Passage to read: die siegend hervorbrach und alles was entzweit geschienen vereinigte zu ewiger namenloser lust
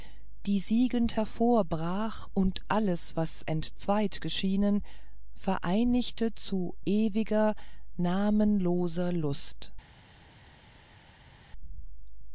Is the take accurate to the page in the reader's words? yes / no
yes